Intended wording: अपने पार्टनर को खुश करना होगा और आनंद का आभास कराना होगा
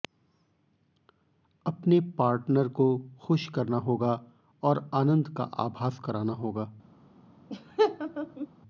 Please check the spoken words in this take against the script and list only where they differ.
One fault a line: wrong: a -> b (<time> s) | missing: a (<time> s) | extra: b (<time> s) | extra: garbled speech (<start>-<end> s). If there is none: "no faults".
no faults